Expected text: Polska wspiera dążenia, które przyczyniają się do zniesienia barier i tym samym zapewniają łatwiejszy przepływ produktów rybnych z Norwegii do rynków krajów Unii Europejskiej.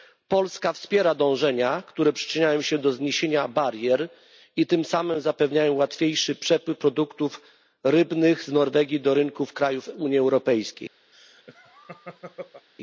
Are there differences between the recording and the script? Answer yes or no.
no